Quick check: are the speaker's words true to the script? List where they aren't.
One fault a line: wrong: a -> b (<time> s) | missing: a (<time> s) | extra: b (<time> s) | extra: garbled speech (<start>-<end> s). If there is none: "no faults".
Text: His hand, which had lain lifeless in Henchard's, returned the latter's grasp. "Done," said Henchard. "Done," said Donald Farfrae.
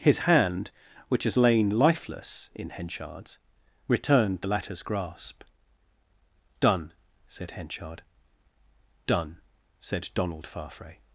wrong: had -> has (1.2 s)